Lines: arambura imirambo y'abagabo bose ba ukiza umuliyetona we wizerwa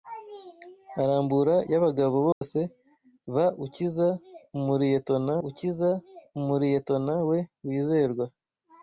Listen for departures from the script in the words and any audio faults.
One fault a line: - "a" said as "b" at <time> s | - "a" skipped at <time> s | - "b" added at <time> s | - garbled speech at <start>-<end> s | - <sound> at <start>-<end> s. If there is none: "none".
- "imirambo" skipped at 1.6 s
- dropout at 2.3-2.4 s
- "ukiza umuliyetona" added at 5.5 s